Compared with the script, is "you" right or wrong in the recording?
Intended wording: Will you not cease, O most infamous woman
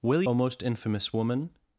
wrong